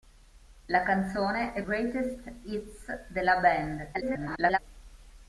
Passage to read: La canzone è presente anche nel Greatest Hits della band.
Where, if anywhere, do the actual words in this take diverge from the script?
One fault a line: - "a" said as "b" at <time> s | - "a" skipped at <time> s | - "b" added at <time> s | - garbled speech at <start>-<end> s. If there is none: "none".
- "presente anche nel" skipped at 1.6 s
- garbled speech at 3.9-4.6 s